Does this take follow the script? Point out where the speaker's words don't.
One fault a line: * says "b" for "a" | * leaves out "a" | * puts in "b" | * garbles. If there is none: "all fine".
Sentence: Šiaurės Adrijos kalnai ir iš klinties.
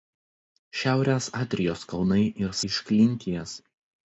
all fine